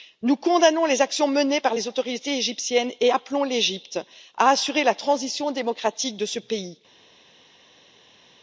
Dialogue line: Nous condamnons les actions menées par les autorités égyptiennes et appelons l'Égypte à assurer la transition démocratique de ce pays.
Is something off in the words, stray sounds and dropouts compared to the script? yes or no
no